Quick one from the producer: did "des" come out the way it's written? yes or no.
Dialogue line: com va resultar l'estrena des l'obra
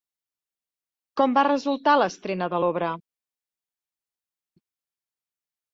no